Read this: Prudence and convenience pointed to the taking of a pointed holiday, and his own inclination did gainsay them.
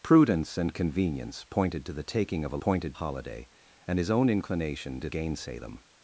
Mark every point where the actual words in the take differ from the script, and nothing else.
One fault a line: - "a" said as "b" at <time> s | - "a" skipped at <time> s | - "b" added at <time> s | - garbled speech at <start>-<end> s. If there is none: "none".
none